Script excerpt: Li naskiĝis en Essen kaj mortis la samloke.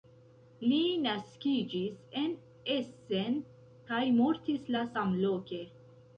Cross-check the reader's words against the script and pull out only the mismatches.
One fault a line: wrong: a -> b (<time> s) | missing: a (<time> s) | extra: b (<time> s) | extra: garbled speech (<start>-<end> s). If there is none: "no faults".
no faults